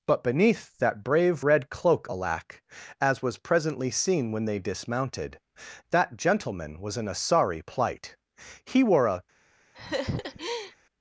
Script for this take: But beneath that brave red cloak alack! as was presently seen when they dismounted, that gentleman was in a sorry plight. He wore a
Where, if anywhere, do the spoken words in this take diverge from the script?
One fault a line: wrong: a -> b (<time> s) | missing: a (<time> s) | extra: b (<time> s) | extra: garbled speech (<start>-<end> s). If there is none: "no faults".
no faults